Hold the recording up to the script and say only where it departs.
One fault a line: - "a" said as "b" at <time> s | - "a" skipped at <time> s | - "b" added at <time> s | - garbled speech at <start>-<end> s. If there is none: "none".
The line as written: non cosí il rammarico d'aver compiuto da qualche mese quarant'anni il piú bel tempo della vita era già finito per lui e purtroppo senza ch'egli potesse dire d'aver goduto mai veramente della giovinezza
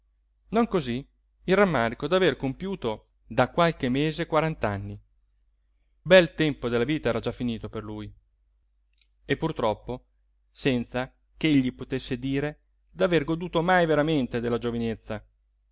- "il piú" skipped at 5.0 s